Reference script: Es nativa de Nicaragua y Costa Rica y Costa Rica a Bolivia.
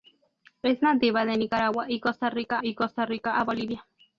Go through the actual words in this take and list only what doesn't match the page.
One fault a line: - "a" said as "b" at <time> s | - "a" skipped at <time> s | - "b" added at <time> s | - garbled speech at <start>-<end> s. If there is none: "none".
none